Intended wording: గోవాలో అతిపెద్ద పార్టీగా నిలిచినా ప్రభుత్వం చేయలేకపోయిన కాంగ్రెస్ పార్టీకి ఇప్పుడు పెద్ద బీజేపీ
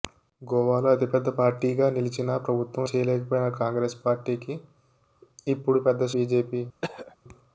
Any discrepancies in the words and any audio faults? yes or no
yes